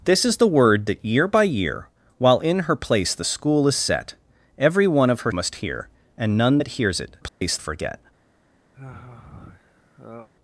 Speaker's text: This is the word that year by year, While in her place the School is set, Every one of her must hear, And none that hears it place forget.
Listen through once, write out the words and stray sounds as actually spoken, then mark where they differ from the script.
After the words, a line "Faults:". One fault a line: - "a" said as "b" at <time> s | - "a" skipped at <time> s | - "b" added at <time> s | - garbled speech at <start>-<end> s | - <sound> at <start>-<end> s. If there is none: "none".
This is the word that year by year, While in her place the School is set, Every one of her must hear, And none that hears it place forget.
Faults:
- dropout at 7.3-7.4 s
- sigh at 8.7-10.3 s